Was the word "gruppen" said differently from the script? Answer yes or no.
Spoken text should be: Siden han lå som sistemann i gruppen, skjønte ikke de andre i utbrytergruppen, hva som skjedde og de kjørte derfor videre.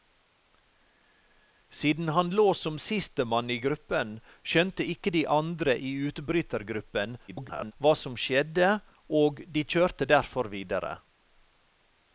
no